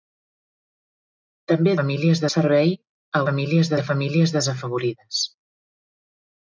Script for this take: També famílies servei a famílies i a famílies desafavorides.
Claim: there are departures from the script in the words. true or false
false